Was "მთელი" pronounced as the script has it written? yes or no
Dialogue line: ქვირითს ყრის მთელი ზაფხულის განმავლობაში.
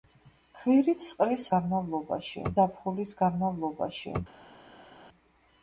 no